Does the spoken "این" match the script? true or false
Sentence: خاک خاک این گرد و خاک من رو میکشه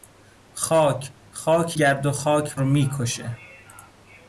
false